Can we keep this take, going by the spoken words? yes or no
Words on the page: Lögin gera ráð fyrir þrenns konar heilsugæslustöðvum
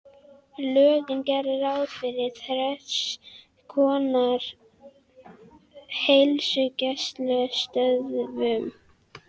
yes